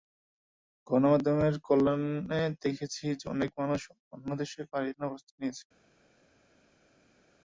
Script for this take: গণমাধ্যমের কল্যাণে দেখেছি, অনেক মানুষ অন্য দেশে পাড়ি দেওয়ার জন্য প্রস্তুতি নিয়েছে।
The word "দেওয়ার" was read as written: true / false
false